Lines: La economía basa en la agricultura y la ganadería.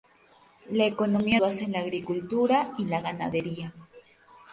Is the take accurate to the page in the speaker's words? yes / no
yes